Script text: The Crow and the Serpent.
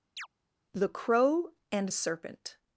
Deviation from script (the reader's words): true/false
true